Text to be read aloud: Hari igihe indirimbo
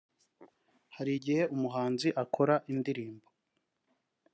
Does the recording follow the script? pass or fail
fail